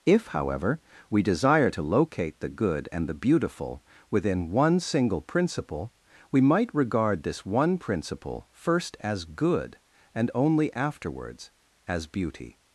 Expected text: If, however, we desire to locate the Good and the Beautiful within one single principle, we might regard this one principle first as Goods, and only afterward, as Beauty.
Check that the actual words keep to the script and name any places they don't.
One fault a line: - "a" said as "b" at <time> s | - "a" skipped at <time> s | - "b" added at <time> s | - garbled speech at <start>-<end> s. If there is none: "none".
- "Goods" said as "Good" at 9.2 s
- "afterward" said as "afterwards" at 10.7 s